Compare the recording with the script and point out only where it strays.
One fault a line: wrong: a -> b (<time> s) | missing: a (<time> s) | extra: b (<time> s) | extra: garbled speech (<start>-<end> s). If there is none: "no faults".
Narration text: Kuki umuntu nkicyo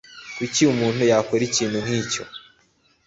extra: yakora ikintu (1.1 s)